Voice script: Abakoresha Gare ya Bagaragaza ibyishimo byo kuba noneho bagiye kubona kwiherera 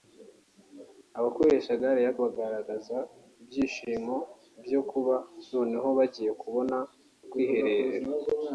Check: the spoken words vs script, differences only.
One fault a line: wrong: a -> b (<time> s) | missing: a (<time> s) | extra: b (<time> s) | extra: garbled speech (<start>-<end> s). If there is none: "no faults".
no faults